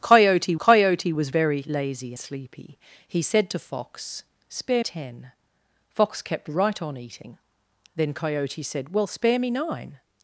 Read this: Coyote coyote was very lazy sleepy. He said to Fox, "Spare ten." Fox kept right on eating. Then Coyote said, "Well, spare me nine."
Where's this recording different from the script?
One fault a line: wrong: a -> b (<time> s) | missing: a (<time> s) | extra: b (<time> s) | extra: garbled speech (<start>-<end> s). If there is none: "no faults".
no faults